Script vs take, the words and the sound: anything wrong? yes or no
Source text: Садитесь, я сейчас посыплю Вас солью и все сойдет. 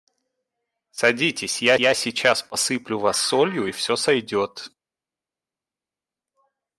yes